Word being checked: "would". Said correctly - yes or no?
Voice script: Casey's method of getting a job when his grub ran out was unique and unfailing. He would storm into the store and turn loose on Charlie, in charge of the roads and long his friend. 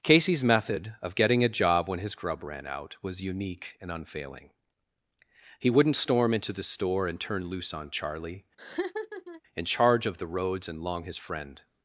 no